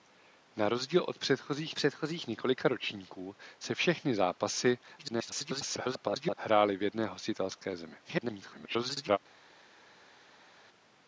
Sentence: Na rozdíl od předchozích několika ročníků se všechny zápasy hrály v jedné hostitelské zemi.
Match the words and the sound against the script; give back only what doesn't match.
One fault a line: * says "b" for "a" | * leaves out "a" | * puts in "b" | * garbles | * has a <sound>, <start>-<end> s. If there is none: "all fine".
* puts in "předchozích"
* garbles
* garbles